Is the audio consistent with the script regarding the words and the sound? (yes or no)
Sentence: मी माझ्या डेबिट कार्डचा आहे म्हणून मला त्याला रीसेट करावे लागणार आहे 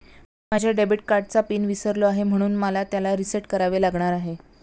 no